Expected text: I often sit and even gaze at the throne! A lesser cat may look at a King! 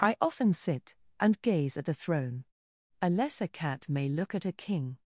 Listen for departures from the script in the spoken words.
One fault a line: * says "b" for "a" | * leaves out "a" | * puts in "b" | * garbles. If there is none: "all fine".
* leaves out "even"